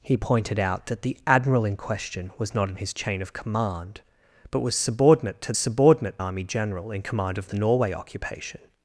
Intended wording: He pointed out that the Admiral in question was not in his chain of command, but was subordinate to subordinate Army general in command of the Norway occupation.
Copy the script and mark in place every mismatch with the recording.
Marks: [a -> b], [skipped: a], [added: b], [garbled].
He pointed out that the Admiral in question was not in his chain of command, but was subordinate to subordinate Army general in command of the Norway occupation.